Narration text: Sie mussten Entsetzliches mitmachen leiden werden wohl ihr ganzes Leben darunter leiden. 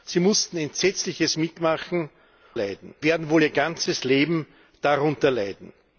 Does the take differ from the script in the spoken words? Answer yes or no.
no